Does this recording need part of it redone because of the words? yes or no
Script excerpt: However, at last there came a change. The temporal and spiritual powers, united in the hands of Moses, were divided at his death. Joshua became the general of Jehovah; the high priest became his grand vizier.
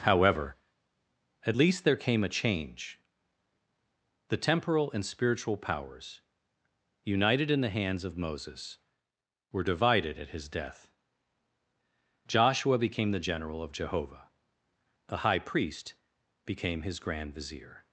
yes